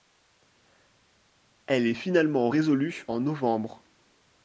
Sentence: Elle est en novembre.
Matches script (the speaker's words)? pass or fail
fail